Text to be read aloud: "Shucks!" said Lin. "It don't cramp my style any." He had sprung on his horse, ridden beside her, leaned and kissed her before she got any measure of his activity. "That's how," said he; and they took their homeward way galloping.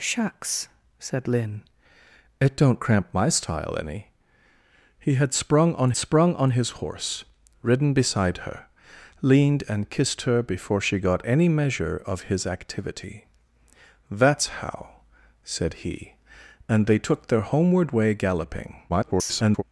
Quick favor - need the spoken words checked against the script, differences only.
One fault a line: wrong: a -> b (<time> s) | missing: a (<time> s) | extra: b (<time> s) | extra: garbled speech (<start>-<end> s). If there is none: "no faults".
extra: sprung on (6.0 s)
extra: garbled speech (18.9-19.6 s)